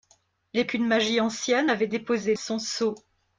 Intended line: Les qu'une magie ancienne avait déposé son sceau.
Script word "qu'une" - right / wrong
right